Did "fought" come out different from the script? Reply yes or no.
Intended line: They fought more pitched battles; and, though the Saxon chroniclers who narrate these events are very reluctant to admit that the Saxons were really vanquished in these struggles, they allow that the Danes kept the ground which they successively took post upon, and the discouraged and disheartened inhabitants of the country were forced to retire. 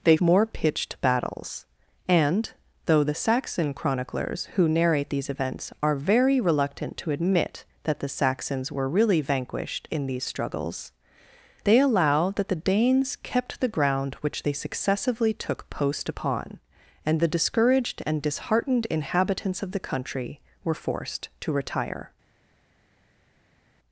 yes